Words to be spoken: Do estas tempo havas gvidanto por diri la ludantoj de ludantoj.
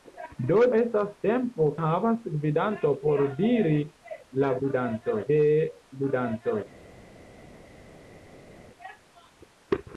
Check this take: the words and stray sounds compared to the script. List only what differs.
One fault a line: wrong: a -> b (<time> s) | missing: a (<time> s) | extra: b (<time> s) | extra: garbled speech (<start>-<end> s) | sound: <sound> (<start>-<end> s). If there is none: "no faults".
no faults